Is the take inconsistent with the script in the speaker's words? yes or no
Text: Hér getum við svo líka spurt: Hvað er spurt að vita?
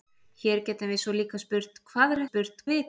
no